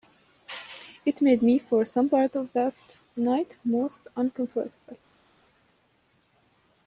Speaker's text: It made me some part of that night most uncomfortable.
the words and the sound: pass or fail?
fail